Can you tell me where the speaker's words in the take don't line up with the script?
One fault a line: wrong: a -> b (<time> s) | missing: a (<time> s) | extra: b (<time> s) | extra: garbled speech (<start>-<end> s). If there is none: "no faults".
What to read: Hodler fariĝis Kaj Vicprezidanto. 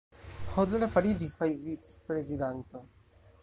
no faults